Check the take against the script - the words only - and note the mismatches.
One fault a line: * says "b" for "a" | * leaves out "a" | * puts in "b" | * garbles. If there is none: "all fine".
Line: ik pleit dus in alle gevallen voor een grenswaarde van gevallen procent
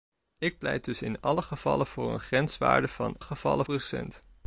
all fine